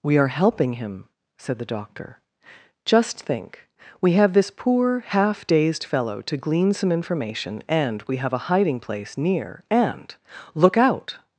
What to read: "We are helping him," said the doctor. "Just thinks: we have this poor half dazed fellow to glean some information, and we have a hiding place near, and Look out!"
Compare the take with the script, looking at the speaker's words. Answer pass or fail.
fail